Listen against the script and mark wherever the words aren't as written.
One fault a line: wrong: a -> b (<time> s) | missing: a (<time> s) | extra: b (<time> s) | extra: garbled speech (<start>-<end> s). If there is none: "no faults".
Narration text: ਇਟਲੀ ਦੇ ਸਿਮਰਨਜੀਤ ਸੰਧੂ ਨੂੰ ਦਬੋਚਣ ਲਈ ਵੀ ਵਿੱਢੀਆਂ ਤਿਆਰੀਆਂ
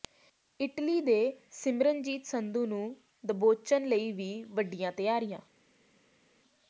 no faults